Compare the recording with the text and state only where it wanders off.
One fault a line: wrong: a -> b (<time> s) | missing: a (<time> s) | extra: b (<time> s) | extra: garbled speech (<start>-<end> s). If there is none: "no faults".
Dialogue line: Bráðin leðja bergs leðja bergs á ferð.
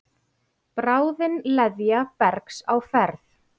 missing: leðja bergs (2.6 s)